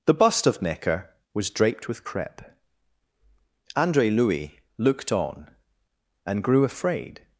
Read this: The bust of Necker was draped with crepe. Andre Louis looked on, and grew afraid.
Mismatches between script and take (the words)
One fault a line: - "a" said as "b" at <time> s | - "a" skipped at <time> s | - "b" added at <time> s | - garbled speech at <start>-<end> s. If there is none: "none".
none